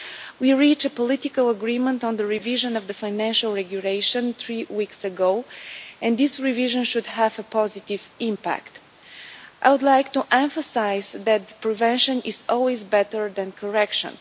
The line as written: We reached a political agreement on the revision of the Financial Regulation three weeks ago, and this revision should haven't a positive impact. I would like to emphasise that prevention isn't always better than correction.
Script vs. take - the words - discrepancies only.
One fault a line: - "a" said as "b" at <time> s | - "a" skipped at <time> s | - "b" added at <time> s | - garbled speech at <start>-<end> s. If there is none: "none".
- "haven't" said as "have" at 7.1 s
- "isn't" said as "is" at 12.2 s